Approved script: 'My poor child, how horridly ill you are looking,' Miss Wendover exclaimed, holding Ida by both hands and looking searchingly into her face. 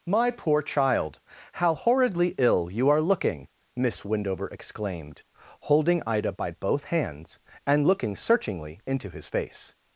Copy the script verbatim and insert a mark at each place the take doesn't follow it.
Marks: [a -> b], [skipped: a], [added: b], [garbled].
'My poor child, how horridly ill you are looking,' Miss Wendover exclaimed, holding Ida by both hands and looking searchingly into [her -> his] face.